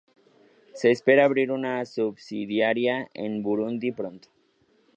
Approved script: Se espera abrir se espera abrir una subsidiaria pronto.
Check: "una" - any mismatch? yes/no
yes